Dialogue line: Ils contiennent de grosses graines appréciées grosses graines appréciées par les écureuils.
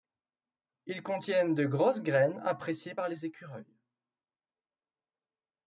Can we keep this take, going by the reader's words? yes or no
no